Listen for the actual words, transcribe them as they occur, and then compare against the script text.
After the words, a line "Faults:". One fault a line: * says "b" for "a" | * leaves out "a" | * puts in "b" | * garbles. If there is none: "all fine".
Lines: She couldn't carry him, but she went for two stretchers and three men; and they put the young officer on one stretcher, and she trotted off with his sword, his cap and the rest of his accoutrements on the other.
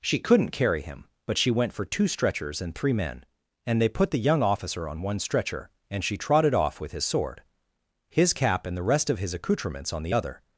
She couldn't carry him, but she went for two stretchers and three men; and they put the young officer on one stretcher, and she trotted off with his sword, his cap and the rest of his accoutrements on the other.
Faults:
all fine